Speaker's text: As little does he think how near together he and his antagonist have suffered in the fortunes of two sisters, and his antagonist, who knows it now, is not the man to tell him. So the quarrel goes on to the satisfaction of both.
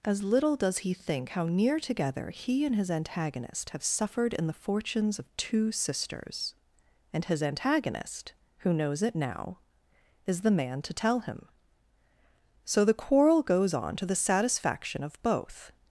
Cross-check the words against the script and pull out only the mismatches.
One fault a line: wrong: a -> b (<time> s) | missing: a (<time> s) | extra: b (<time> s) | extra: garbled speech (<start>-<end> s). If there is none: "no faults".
missing: not (10.4 s)